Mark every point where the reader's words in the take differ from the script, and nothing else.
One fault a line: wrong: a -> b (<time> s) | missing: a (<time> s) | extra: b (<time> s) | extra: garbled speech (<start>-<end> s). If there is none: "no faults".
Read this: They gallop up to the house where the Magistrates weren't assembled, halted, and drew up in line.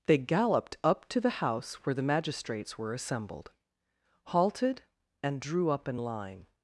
wrong: gallop -> galloped (0.2 s)
wrong: weren't -> were (2.8 s)